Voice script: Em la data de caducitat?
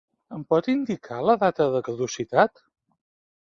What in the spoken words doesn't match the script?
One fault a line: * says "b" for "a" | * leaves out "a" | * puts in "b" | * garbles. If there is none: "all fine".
* puts in "pot indicar"